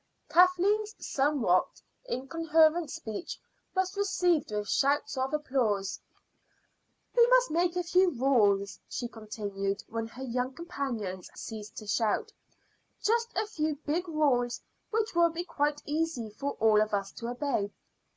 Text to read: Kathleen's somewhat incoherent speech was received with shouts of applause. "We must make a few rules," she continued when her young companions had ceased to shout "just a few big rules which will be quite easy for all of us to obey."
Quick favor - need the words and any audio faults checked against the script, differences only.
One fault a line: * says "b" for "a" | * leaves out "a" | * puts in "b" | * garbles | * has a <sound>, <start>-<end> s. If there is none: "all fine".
* leaves out "had"